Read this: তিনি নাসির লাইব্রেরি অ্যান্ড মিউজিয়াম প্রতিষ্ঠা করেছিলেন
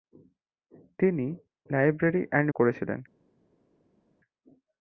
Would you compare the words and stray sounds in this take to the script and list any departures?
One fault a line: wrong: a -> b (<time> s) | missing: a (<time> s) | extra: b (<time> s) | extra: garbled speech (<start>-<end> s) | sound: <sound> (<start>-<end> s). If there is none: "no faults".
missing: নাসির (1.3 s)
missing: মিউজিয়াম প্রতিষ্ঠা (2.5 s)